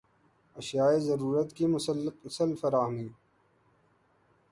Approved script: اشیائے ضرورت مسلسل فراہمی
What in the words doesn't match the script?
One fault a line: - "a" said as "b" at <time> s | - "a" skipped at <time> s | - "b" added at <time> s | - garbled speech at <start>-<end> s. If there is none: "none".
- "کی" added at 1.5 s